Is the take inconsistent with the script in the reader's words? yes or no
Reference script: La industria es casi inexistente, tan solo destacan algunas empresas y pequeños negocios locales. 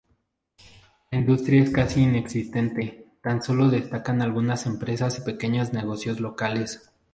no